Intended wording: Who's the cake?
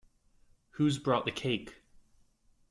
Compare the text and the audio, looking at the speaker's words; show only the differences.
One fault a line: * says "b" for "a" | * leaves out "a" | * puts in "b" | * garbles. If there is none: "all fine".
* puts in "brought"